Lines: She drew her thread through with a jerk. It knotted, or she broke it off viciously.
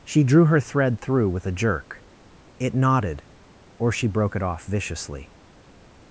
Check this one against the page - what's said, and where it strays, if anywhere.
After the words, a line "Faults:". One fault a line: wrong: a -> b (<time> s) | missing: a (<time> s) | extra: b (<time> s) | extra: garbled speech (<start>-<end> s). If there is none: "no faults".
She drew her thread through with a jerk. It knotted, or she broke it off viciously.
Faults:
no faults